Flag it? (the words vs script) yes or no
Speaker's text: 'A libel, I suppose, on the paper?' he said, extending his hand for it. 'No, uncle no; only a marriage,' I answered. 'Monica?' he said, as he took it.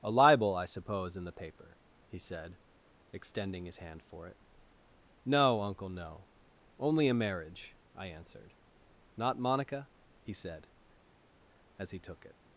yes